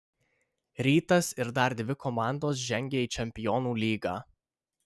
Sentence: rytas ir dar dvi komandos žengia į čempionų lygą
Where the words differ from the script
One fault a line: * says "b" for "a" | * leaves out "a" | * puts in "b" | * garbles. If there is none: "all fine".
all fine